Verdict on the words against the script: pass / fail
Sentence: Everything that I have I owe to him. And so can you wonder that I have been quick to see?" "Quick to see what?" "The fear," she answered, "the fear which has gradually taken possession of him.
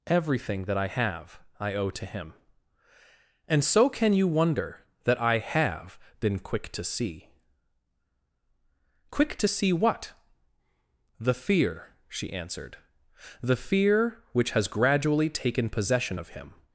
pass